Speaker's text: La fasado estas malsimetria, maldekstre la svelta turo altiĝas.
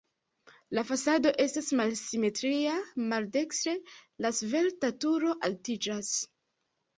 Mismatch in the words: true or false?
false